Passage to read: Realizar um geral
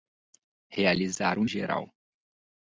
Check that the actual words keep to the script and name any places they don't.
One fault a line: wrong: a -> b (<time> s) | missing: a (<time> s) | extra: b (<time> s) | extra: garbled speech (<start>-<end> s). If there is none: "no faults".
no faults